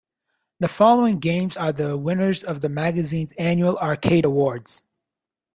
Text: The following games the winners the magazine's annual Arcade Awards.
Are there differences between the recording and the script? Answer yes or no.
yes